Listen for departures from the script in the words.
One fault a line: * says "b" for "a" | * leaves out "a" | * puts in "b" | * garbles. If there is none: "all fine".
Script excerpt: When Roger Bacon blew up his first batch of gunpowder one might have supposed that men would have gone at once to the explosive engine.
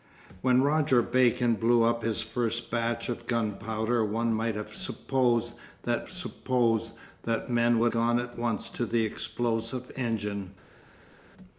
* puts in "supposed that"
* leaves out "have"